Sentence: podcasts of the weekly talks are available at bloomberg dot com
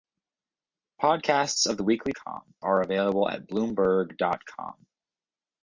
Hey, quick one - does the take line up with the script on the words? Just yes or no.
no